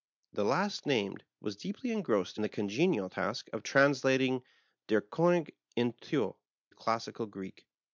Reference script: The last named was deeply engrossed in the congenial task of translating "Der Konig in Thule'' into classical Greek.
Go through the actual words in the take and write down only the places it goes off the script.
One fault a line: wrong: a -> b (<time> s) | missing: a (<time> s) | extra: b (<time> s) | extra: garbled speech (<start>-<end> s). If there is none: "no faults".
missing: in (2.4 s)
missing: into (6.4 s)